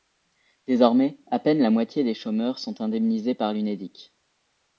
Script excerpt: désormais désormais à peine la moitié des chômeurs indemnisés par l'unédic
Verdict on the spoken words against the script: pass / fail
fail